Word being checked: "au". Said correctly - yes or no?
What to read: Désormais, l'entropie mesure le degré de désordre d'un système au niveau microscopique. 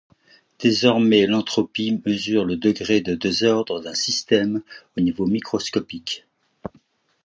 yes